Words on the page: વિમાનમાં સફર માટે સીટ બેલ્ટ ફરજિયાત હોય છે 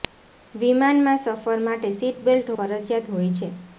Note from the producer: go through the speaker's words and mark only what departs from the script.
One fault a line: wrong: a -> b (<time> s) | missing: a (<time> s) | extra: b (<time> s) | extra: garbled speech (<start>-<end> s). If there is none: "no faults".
no faults